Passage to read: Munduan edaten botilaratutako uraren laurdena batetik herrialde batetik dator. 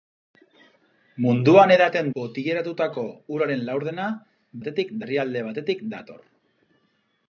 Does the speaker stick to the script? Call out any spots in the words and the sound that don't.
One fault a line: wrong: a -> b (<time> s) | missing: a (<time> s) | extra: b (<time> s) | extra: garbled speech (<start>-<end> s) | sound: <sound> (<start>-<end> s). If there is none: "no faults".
no faults